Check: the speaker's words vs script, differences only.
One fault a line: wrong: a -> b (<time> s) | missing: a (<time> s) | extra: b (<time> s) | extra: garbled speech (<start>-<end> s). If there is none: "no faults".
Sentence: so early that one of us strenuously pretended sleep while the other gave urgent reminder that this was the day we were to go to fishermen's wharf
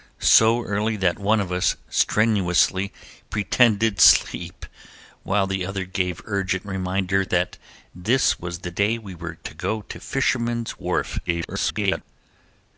extra: garbled speech (11.3-12.0 s)